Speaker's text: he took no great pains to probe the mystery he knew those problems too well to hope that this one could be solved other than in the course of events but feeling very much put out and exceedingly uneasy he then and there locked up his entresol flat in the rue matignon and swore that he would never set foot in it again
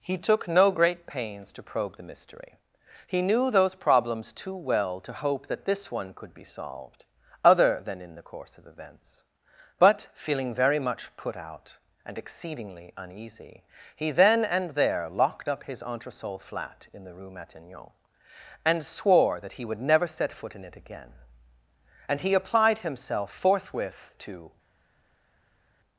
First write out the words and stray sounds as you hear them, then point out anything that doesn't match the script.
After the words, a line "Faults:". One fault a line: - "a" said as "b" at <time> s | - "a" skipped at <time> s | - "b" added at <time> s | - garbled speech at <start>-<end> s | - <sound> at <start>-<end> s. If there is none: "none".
he took no great pains to probe the mystery he knew those problems too well to hope that this one could be solved other than in the course of events but feeling very much put out and exceedingly uneasy he then and there locked up his entresol flat in the rue matignon and swore that he would never set foot in it again and he applied himself forthwith to
Faults:
- "and he applied himself forthwith to" added at 22.1 s